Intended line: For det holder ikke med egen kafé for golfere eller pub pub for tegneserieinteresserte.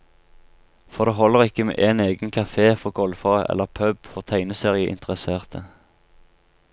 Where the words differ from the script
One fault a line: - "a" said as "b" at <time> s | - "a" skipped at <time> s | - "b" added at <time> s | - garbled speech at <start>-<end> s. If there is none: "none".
- "en" added at 1.9 s
- "pub" skipped at 4.1 s